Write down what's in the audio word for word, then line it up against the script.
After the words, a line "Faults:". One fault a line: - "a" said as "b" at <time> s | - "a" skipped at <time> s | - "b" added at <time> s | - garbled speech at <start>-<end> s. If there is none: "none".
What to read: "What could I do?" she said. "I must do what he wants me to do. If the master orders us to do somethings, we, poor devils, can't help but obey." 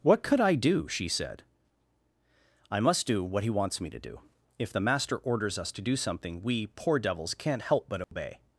"What could I do?" she said. "I must do what he wants me to do. If the master orders us to do something, we, poor devils, can't help but obey."
Faults:
- "somethings" said as "something" at 6.0 s